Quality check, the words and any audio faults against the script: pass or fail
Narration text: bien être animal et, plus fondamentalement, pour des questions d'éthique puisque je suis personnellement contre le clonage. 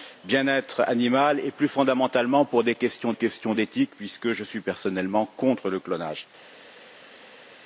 fail